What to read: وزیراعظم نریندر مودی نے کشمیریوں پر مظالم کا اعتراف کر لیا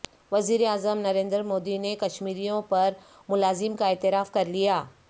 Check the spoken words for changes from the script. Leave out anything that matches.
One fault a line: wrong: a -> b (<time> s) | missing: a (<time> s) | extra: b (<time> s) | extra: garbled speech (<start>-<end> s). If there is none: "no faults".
no faults